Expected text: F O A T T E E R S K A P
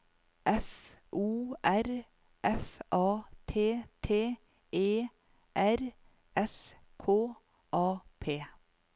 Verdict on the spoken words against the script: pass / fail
fail